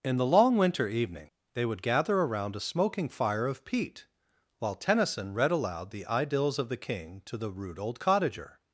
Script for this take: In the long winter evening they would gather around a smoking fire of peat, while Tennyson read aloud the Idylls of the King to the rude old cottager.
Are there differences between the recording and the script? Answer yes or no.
no